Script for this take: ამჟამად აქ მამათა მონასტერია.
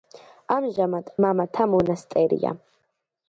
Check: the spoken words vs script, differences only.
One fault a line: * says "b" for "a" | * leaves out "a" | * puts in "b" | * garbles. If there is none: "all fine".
* leaves out "აქ"